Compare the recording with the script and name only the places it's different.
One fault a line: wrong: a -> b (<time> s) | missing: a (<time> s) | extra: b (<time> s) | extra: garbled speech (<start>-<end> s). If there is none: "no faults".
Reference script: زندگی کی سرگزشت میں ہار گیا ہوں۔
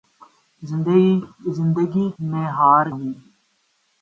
missing: کی سرگزشت (2.1 s)
missing: گیا (2.9 s)